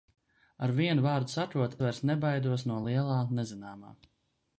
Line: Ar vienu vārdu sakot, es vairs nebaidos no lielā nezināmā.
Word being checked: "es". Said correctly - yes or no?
no